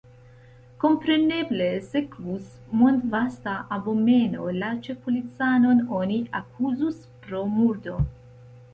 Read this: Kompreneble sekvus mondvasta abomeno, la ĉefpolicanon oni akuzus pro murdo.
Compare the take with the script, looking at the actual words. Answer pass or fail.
pass